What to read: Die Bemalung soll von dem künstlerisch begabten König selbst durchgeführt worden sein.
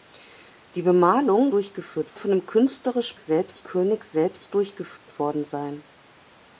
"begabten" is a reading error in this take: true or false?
true